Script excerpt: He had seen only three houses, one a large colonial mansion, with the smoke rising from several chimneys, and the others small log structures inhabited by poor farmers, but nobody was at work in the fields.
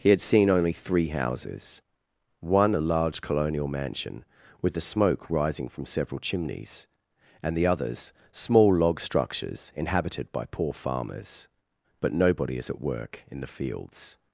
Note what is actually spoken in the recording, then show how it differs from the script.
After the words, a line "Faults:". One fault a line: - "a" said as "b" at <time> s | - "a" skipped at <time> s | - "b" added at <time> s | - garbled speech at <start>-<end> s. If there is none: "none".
He had seen only three houses, one a large colonial mansion, with the smoke rising from several chimneys, and the others small log structures inhabited by poor farmers, but nobody is at work in the fields.
Faults:
- "was" said as "is" at 12.6 s